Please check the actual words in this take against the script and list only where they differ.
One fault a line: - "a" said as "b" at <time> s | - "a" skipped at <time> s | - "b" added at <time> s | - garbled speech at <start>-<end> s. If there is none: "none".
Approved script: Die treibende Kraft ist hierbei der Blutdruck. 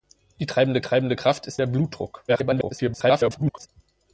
- "treibende" added at 0.8 s
- "hierbei" skipped at 1.6 s
- garbled speech at 2.3-3.7 s